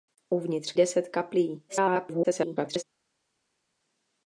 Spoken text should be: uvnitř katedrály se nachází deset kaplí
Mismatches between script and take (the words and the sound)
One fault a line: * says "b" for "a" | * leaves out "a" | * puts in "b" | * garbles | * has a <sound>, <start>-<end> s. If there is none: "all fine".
* leaves out "katedrály se nachází"
* garbles